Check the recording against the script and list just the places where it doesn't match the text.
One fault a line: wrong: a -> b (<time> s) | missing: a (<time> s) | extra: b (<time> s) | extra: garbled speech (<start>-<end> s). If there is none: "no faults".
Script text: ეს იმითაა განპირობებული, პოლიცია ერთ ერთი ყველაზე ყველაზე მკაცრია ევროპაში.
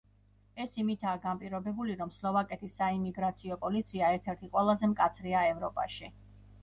extra: რომ სლოვაკეთის საიმიგრაციო (2.0 s)
missing: ყველაზე (4.9 s)